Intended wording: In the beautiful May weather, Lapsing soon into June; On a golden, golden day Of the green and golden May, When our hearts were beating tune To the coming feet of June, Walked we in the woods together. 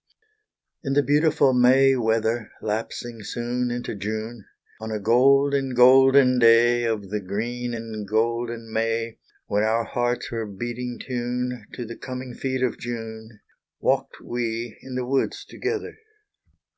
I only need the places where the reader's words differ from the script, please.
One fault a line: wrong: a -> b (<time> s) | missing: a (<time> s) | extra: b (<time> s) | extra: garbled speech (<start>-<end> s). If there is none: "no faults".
no faults